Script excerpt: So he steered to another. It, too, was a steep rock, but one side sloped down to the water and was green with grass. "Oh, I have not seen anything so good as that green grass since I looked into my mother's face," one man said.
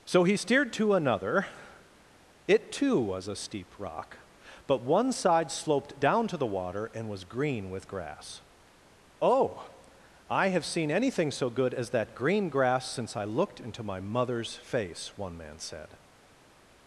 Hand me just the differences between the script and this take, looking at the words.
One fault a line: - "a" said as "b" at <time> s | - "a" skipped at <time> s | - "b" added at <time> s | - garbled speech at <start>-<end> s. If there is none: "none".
- "not" skipped at 10.6 s